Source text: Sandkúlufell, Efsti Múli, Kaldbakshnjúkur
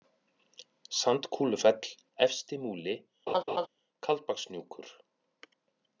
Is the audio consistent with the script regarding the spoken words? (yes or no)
yes